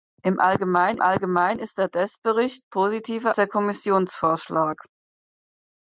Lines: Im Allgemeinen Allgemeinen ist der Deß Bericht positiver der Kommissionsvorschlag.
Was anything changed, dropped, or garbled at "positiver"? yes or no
no